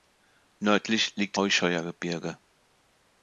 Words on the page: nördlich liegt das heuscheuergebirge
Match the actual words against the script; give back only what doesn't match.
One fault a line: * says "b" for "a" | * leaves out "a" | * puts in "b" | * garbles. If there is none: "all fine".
* leaves out "das"